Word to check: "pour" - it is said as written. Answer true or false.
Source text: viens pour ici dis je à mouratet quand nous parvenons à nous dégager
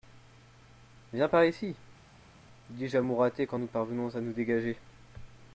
false